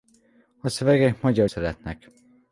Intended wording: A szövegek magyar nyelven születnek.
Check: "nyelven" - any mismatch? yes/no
yes